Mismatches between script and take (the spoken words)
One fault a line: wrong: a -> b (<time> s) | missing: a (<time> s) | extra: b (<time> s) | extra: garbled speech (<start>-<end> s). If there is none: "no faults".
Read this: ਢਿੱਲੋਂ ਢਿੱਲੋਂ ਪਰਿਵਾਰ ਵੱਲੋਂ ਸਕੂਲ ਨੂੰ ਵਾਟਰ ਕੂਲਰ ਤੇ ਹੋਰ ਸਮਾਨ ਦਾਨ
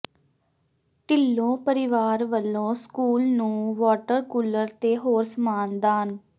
missing: ਢਿੱਲੋਂ (1.6 s)